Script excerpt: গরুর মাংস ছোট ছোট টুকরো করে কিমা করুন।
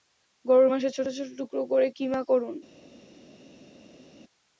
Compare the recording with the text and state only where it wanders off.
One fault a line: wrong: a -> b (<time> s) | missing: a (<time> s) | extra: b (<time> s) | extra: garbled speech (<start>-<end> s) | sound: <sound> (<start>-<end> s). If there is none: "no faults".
no faults